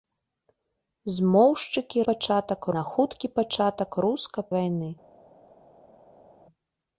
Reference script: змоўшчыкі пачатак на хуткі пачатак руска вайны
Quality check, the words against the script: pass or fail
pass